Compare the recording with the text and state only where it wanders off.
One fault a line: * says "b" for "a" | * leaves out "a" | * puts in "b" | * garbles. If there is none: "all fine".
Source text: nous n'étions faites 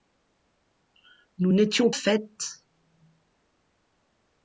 all fine